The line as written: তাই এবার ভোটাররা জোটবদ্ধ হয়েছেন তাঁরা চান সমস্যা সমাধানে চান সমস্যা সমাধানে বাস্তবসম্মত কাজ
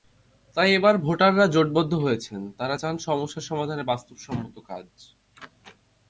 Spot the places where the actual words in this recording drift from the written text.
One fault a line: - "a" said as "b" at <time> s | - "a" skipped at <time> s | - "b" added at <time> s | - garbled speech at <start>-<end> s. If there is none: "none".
- "চান সমস্যা সমাধানে" skipped at 3.8 s